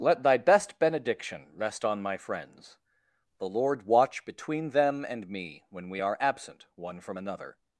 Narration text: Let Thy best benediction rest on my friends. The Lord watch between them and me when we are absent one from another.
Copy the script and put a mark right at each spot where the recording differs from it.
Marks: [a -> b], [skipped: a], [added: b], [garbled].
Let Thy best benediction rest on my friends. The Lord watch between them and me when we are absent one from another.